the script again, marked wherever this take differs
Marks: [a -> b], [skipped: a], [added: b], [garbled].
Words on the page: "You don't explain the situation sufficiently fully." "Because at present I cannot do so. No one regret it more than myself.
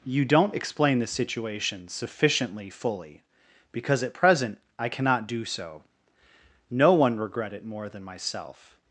"You don't explain the situation sufficiently fully." "Because at present I cannot do so. No one regret it more than myself.